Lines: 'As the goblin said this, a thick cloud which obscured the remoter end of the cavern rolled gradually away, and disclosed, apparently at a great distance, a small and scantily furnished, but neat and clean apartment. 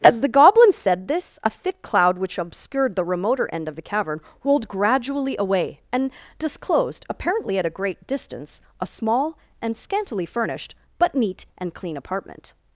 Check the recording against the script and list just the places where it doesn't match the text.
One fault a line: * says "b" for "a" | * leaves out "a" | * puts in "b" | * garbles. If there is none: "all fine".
all fine